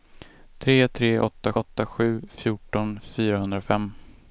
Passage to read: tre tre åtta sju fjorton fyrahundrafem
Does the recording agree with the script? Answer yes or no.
no